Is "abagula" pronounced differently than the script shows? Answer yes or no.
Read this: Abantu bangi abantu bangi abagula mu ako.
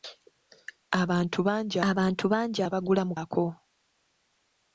no